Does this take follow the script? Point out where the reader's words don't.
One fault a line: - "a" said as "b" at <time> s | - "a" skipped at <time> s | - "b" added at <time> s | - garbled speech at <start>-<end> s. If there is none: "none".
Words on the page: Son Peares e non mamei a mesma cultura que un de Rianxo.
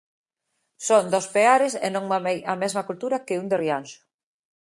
- "dos" added at 1.1 s